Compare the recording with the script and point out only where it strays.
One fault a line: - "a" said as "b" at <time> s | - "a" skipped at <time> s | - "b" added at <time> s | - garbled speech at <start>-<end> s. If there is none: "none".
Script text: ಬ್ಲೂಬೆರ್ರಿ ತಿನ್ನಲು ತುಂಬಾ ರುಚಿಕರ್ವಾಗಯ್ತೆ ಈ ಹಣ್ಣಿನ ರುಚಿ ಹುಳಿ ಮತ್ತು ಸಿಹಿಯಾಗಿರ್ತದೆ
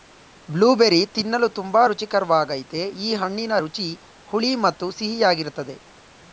none